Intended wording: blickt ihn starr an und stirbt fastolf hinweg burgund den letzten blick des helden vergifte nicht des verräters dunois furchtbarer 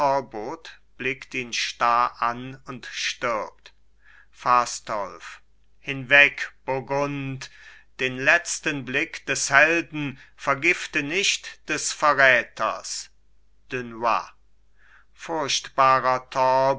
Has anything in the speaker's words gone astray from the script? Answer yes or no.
no